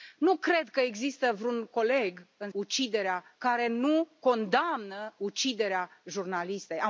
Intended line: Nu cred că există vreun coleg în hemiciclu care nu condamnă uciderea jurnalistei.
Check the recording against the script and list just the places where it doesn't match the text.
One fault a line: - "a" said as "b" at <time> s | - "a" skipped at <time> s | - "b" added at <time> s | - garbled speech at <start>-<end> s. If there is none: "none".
- "hemiciclu" said as "uciderea" at 2.5 s